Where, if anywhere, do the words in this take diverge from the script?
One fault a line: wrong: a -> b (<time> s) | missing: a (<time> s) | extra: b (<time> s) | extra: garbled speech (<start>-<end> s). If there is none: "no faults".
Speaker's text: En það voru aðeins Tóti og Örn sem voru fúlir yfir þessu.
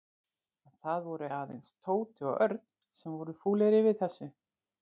no faults